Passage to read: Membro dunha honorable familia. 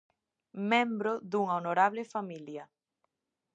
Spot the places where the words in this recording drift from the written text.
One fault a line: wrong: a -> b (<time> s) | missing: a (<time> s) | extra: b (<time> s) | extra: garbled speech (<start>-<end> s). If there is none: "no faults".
no faults